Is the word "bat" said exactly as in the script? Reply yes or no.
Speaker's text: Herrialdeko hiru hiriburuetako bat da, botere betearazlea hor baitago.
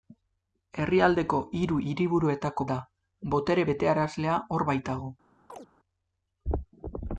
no